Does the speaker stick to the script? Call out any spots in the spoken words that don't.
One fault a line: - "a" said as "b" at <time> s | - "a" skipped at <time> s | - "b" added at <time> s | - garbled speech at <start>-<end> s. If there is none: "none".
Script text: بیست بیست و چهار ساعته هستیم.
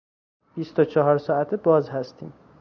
- "بیست" skipped at 0.8 s
- "باز" added at 1.6 s